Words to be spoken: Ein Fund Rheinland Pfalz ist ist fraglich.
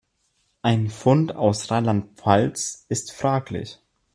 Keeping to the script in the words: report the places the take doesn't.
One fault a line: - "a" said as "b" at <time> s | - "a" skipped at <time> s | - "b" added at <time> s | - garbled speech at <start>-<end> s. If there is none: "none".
- "aus" added at 1.4 s
- "ist" skipped at 3.1 s